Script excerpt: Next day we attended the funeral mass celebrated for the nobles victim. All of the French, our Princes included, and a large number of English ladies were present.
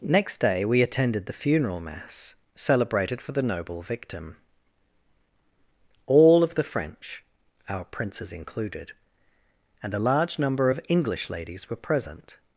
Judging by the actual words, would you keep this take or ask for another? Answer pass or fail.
fail